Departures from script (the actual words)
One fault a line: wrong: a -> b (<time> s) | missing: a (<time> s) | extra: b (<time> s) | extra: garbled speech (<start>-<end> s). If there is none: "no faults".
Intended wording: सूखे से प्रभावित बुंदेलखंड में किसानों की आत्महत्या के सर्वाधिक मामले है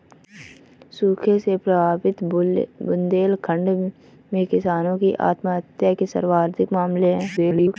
extra: garbled speech (7.4-7.8 s)